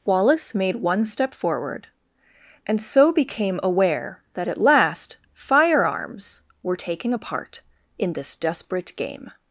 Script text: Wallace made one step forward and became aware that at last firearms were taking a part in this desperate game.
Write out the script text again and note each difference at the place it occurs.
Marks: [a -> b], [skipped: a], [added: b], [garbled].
Wallace made one step forward and [added: so] became aware that at last firearms were taking a part in this desperate game.